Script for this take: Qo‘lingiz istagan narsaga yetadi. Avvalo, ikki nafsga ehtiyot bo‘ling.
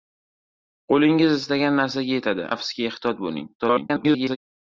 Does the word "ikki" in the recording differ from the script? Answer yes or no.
yes